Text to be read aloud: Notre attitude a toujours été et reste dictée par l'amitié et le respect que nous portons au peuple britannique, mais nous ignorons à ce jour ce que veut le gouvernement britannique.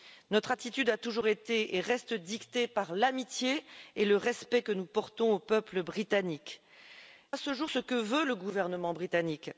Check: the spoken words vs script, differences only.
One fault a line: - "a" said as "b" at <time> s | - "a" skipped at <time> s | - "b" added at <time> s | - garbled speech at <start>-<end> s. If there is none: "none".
- "mais nous ignorons" skipped at 6.6 s